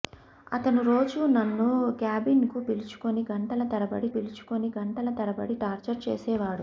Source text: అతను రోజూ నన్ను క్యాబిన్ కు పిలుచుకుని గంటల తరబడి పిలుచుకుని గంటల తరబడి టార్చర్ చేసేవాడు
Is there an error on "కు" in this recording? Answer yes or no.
no